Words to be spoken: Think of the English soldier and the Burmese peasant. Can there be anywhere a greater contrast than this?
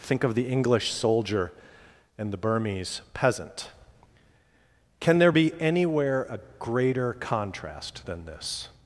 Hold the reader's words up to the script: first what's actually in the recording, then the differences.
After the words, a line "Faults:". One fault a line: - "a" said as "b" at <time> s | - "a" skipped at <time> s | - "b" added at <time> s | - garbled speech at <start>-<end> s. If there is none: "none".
Think of the English soldier and the Burmese peasant. Can there be anywhere a greater contrast than this?
Faults:
none